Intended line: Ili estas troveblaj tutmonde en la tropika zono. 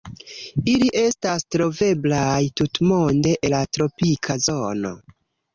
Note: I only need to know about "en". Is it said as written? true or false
false